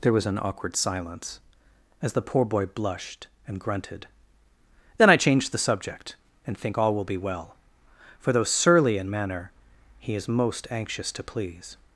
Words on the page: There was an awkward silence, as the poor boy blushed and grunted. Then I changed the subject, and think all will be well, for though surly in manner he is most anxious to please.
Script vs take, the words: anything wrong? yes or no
no